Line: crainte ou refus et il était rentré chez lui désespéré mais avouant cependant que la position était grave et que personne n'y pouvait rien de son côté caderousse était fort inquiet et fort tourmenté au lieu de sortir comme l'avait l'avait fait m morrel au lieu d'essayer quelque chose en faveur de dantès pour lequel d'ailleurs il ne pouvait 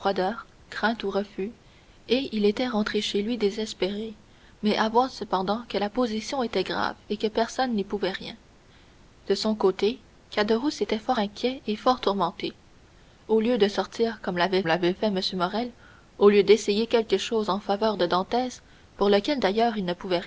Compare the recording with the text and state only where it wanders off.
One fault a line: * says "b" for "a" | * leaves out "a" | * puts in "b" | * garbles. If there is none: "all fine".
all fine